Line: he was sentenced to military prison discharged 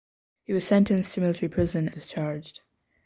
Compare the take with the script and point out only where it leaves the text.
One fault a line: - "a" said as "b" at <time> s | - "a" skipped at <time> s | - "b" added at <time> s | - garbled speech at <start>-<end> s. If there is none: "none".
none